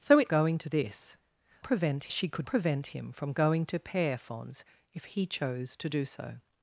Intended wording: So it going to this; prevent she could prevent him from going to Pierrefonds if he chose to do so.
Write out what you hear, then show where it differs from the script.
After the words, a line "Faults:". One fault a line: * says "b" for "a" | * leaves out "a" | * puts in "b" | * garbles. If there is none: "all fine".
So it going to this; prevent she could prevent him from going to Pierrefonds if he chose to do so.
Faults:
all fine